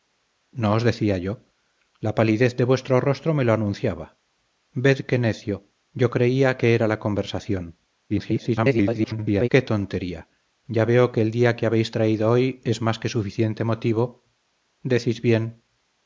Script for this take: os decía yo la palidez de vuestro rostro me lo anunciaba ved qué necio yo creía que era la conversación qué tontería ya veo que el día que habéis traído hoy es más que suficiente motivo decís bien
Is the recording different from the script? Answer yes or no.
yes